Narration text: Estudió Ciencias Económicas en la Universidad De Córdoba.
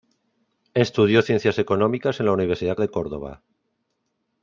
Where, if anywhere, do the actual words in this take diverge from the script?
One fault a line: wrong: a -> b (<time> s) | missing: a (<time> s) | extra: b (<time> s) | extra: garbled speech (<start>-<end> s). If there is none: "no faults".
no faults